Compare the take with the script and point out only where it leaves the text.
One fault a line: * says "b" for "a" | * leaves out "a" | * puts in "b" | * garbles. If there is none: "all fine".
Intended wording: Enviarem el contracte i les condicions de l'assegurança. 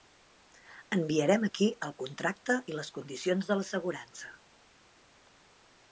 * puts in "aquí"